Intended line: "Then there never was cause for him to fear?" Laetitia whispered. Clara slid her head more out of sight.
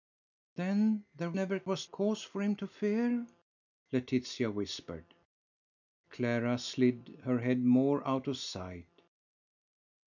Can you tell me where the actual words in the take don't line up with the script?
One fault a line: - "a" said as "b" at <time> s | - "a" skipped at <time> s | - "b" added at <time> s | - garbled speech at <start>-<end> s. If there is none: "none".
none